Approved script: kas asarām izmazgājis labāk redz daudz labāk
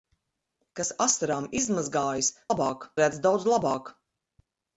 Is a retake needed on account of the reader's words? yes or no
no